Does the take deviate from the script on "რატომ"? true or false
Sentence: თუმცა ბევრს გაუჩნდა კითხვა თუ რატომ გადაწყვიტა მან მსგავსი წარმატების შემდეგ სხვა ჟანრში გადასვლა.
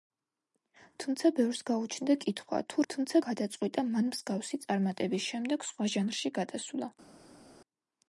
true